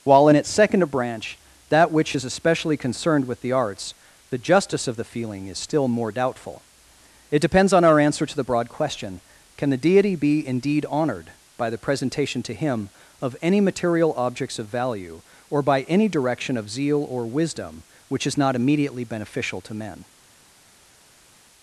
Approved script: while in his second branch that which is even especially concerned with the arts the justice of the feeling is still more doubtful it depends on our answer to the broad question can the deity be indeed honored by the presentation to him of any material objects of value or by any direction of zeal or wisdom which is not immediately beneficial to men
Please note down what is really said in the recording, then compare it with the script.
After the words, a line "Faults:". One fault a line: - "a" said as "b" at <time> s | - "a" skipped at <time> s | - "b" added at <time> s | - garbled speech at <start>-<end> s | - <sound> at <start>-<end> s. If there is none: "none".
while in its second branch that which is especially concerned with the arts the justice of the feeling is still more doubtful it depends on our answer to the broad question can the deity be indeed honored by the presentation to him of any material objects of value or by any direction of zeal or wisdom which is not immediately beneficial to men
Faults:
- "his" said as "its" at 0.4 s
- "even" skipped at 2.2 s